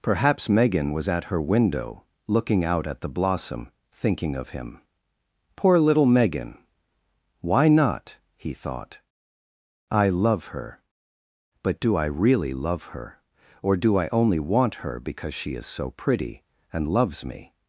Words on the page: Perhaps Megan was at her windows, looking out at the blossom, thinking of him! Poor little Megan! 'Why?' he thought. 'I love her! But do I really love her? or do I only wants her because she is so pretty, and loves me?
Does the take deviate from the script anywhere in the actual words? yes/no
yes